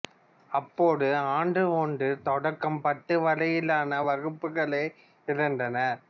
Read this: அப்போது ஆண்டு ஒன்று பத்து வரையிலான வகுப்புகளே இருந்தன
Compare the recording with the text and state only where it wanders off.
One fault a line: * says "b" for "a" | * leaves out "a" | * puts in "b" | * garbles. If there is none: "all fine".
* puts in "தொடக்கம்"